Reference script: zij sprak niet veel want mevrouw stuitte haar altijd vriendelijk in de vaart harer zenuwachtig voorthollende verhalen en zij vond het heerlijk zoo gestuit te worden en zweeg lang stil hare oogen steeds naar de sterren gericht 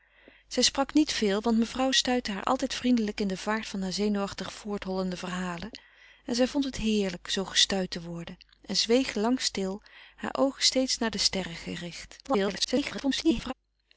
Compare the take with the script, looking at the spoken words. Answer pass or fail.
fail